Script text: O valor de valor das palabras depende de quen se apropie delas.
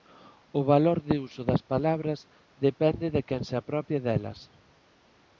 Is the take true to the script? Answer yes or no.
no